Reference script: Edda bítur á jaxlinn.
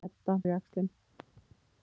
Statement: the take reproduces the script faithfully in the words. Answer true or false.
false